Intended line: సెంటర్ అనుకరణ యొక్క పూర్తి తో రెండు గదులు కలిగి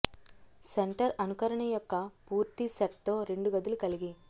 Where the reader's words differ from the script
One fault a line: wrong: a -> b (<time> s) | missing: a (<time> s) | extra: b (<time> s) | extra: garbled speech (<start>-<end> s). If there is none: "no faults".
extra: సెట్ (2.7 s)